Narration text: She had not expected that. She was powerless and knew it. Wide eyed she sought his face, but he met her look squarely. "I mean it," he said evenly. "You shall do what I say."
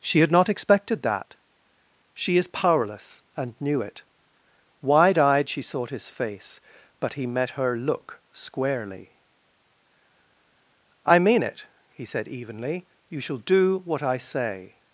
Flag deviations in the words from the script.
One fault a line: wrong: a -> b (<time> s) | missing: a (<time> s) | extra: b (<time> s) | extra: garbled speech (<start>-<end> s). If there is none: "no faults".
wrong: was -> is (2.4 s)